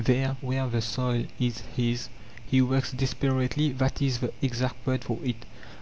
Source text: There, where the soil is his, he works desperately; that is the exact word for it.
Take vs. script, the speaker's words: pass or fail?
pass